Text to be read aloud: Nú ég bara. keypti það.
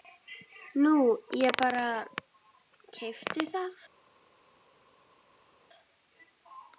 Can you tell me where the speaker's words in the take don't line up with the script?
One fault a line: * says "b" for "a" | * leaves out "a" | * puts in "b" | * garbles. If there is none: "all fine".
all fine